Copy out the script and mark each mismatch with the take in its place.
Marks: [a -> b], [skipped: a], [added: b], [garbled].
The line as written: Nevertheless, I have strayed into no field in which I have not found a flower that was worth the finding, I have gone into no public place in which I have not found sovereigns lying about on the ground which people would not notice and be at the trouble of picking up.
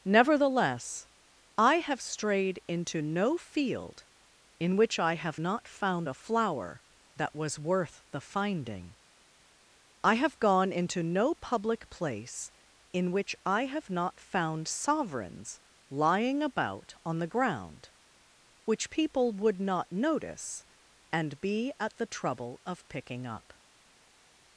Nevertheless, I have strayed into no field in which I have not found a flower that was worth the finding, I have gone into no public place in which I have not found sovereigns lying about on the ground which people would not notice and be at the trouble of picking up.